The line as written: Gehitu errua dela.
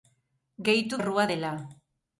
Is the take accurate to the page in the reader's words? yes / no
yes